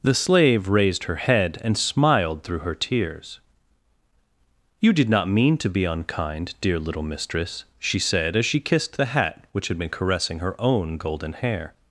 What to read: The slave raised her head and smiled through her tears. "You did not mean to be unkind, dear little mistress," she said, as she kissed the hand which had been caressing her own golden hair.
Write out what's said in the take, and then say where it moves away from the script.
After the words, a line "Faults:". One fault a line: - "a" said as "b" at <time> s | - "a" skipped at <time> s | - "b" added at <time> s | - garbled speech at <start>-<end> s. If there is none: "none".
The slave raised her head and smiled through her tears. "You did not mean to be unkind, dear little mistress," she said, as she kissed the hat which had been caressing her own golden hair.
Faults:
- "hand" said as "hat" at 9.1 s